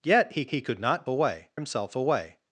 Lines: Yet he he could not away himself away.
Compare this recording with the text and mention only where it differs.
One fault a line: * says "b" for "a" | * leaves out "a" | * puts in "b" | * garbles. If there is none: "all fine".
all fine